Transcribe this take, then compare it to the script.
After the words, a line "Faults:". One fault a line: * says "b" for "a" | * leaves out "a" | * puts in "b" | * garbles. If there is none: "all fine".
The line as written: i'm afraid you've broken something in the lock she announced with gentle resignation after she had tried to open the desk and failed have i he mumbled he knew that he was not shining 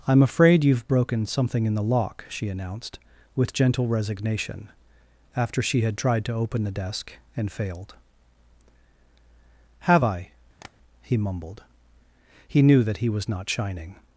i'm afraid you've broken something in the lock she announced with gentle resignation after she had tried to open the desk and failed have i he mumbled he knew that he was not shining
Faults:
all fine